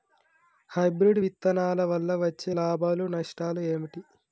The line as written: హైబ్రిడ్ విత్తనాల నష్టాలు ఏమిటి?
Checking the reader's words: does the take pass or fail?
fail